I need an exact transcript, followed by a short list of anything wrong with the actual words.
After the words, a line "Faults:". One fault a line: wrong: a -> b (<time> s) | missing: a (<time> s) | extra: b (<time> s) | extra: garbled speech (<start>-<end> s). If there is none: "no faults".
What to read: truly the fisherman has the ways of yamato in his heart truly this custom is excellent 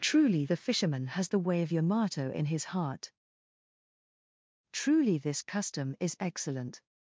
truly the fisherman has the way of yamato in his heart truly this custom is excellent
Faults:
wrong: ways -> way (1.4 s)